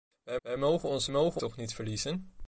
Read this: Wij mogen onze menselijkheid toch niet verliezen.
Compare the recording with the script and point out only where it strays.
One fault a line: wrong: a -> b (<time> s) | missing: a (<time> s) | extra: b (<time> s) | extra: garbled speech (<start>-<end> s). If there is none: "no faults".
extra: wij (0.4 s)
wrong: menselijkheid -> mogen (1.1 s)